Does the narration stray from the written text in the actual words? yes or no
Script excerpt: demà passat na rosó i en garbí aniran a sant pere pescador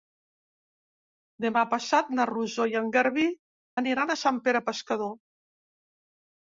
no